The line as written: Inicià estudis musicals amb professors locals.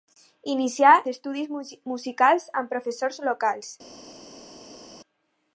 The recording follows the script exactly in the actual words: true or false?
true